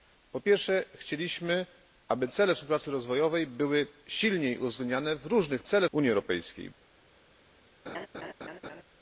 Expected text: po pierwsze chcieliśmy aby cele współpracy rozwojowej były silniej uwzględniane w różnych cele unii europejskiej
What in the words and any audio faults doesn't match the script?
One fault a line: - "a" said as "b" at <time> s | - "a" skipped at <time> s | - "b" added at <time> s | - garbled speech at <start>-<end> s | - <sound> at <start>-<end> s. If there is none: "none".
- laugh at 7.9-8.8 s